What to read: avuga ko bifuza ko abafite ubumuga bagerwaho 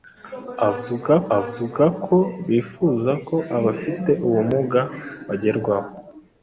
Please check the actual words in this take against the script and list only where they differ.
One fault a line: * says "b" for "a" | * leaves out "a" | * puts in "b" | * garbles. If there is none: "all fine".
* puts in "avuga"